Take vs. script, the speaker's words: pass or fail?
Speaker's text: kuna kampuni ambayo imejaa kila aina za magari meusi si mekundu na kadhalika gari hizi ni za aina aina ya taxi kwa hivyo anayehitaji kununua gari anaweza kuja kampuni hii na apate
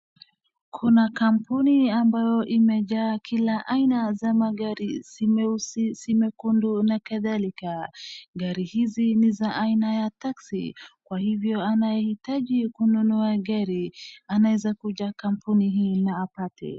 fail